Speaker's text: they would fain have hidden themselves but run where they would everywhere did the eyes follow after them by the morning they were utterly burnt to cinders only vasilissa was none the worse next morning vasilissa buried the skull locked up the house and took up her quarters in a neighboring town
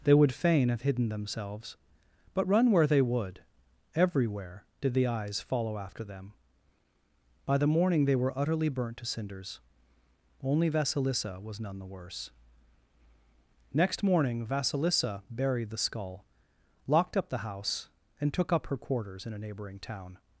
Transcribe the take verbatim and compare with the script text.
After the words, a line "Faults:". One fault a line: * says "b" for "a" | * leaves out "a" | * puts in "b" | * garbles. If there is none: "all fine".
they would fain have hidden themselves but run where they would everywhere did the eyes follow after them by the morning they were utterly burnt to cinders only vasilissa was none the worse next morning vasilissa buried the skull locked up the house and took up her quarters in a neighboring town
Faults:
all fine